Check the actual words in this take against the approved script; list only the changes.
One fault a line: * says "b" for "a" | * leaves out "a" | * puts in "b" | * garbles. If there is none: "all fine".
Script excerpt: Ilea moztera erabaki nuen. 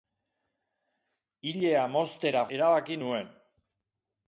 all fine